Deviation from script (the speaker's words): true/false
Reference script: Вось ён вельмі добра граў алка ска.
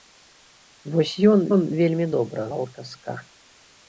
true